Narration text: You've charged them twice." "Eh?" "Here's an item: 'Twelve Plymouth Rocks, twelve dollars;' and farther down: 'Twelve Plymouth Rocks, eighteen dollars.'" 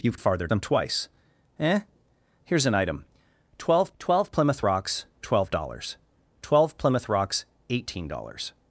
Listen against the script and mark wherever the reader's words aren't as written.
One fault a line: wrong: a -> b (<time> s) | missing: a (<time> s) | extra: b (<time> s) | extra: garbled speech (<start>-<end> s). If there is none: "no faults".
wrong: charged -> farther (0.2 s)
extra: twelve (4.0 s)
missing: and farther down (6.0 s)